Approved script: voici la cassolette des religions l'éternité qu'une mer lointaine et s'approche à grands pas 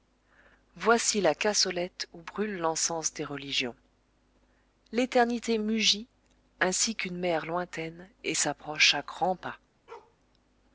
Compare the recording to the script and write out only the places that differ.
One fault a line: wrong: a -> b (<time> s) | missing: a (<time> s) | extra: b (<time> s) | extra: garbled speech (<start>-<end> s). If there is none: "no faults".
extra: où brûle l'encens (2.1 s)
extra: mugit ainsi (5.6 s)